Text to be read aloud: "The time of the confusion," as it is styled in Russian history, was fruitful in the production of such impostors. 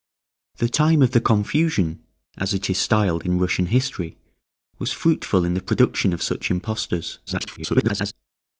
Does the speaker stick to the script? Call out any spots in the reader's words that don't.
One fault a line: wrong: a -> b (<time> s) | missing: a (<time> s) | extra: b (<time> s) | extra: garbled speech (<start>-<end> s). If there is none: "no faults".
extra: garbled speech (7.3-8.1 s)